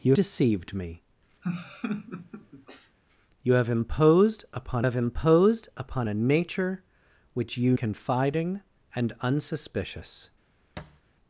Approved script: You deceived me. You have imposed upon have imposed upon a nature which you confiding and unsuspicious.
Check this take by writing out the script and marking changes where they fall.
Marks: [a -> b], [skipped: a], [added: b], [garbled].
You deceived me. You have imposed upon have imposed upon a nature which you confiding and unsuspicious.